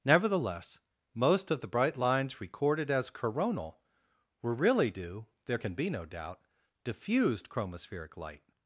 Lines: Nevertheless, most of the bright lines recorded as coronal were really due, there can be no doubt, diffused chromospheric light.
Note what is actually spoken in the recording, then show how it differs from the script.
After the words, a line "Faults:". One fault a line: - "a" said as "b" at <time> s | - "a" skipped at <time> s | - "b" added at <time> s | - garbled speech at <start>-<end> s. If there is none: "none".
Nevertheless, most of the bright lines recorded as coronal were really due, there can be no doubt, diffused chromospheric light.
Faults:
none